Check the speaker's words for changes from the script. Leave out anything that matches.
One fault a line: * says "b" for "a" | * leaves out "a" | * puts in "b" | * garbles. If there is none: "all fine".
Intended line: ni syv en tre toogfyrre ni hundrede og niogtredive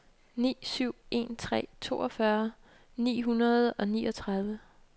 all fine